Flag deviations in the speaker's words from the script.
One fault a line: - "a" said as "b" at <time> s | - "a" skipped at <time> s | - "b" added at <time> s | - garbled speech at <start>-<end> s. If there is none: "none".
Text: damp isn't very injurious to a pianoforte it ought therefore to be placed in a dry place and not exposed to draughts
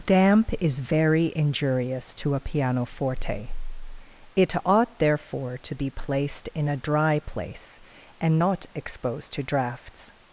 - "isn't" said as "is" at 0.6 s